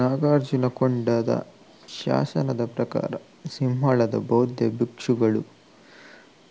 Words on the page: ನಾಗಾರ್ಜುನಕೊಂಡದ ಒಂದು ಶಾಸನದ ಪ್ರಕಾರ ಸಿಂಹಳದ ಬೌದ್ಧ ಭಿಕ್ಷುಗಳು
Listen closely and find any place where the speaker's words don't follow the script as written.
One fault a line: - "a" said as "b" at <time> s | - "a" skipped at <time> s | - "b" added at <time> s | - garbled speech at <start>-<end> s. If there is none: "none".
- "ಒಂದು" skipped at 1.3 s